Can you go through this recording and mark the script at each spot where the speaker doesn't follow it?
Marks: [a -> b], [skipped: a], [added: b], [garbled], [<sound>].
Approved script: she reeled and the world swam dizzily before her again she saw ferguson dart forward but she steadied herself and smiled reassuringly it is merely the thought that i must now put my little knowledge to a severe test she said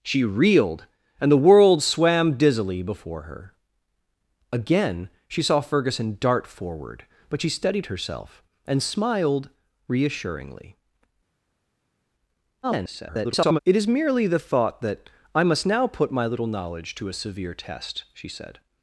she reeled and the world swam dizzily before her again she saw ferguson dart forward but she steadied herself and smiled reassuringly [garbled] it is merely the thought that i must now put my little knowledge to a severe test she said